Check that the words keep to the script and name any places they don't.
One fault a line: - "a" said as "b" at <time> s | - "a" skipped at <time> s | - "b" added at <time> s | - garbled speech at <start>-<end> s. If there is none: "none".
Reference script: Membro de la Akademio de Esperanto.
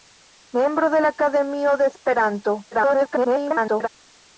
- garbled speech at 2.7-3.9 s